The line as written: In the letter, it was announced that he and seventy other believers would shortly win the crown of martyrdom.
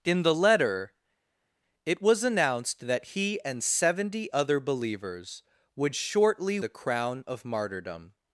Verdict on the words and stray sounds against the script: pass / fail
fail